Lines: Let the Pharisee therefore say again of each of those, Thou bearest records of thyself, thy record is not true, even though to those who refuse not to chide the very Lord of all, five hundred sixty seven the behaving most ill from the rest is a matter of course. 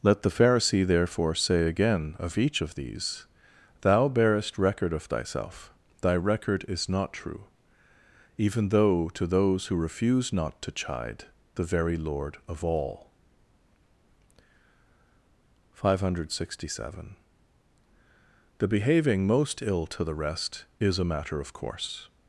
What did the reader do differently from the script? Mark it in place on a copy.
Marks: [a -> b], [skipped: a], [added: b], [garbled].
Let the Pharisee therefore say again of each of [those, -> these] Thou bearest [records -> record] of thyself, thy record is not true, even though to those who refuse not to chide the very Lord of all, five hundred sixty seven the behaving most ill [from -> to] the rest is a matter of course.